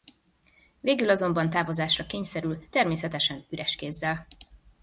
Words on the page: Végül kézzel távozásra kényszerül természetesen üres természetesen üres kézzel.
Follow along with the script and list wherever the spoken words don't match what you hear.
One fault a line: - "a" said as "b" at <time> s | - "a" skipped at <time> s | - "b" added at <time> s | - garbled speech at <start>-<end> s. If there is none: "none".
- "kézzel" said as "azonban" at 1.1 s
- "természetesen üres" skipped at 3.8 s